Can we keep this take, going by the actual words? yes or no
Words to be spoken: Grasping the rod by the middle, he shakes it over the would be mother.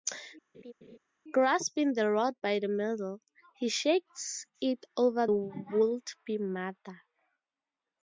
no